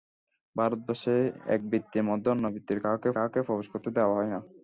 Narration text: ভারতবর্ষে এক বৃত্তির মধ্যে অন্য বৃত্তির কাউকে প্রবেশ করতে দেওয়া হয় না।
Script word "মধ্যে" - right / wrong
right